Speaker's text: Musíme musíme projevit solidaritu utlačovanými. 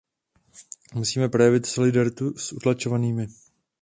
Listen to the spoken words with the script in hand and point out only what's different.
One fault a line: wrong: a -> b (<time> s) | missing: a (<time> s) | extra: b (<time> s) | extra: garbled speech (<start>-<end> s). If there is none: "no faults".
missing: musíme (1.3 s)
extra: s (2.4 s)